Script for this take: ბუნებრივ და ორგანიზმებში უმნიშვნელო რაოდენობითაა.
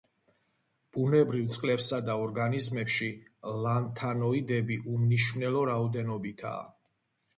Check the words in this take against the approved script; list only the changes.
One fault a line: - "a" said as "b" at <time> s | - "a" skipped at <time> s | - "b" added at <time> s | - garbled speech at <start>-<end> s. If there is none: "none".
- "წყლებსა" added at 1.6 s
- "ლანთანოიდები" added at 3.7 s